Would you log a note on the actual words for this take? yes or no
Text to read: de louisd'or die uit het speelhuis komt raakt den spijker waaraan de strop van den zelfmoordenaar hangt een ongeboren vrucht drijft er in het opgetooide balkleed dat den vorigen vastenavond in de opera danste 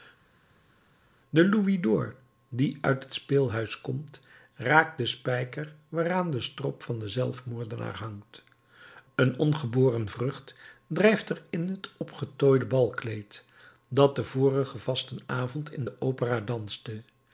no